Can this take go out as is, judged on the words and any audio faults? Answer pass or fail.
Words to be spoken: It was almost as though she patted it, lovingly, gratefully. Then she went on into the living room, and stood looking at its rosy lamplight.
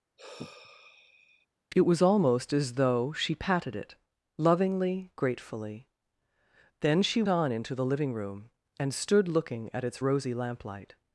fail